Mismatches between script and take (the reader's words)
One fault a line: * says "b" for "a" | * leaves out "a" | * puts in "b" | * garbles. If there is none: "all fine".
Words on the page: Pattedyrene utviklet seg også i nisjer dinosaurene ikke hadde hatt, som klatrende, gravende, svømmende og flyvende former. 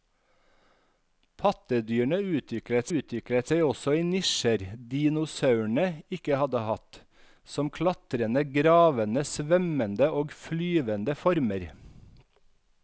* puts in "utviklet"